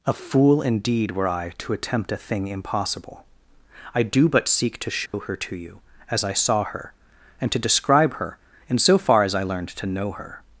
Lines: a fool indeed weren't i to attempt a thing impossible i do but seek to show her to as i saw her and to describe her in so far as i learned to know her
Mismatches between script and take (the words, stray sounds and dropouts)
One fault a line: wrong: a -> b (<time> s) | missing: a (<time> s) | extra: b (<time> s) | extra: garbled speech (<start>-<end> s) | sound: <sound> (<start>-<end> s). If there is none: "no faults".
wrong: weren't -> were (1.1 s)
sound: dropout (5.1-5.1 s)
extra: you (5.5 s)